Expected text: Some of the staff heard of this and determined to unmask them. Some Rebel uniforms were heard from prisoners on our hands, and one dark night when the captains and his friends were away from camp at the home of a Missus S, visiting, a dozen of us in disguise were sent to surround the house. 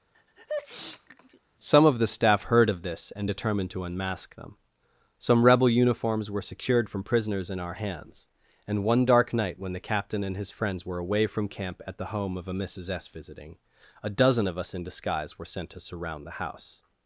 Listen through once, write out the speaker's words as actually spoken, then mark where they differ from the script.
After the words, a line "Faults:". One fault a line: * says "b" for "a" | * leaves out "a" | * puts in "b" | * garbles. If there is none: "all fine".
Some of the staff heard of this and determined to unmask them. Some Rebel uniforms were secured from prisoners in our hands, and one dark night when the captain and his friends were away from camp at the home of a Missus S, visiting, a dozen of us in disguise were sent to surround the house.
Faults:
* says "secured" for "heard"
* says "in" for "on"
* says "captain" for "captains"